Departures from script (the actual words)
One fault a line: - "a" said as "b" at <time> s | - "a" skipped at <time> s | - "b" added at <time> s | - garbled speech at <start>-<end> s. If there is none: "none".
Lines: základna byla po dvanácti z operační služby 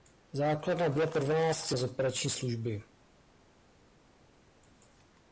none